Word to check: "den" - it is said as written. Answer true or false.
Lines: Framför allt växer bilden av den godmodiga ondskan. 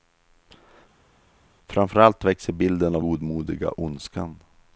false